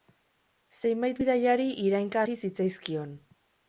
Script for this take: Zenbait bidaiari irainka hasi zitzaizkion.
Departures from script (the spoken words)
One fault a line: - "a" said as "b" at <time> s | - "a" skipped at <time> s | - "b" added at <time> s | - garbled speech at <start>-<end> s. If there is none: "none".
none